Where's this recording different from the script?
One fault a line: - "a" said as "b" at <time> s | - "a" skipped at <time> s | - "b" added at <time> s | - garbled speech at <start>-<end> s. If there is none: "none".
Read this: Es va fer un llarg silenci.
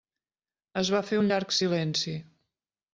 none